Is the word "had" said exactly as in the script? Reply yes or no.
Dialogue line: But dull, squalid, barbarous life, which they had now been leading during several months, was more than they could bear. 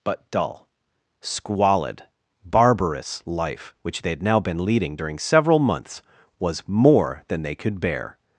yes